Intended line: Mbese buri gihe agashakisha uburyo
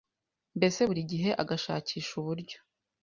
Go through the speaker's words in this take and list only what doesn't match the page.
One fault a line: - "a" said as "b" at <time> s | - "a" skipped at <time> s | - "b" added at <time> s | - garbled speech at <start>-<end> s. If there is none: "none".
none